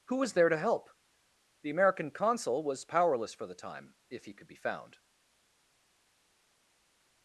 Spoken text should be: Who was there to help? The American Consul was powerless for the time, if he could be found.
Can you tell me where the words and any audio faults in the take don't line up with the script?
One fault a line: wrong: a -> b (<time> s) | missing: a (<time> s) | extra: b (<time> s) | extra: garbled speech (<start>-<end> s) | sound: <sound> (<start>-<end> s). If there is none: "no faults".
no faults